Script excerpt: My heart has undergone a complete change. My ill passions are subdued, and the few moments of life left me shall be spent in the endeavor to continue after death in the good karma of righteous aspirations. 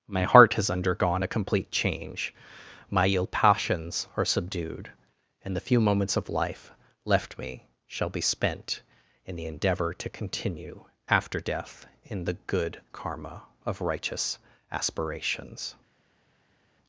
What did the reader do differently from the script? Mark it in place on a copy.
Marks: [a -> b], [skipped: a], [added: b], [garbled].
My heart has undergone a complete change. My ill passions are subdued, and the few moments of life left me shall be spent in the endeavor to continue after death in the good karma of righteous aspirations.